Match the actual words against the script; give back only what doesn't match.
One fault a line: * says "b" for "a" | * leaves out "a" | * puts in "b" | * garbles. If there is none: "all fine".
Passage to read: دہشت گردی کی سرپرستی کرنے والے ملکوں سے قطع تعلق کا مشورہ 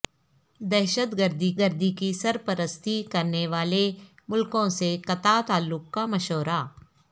* puts in "گردی"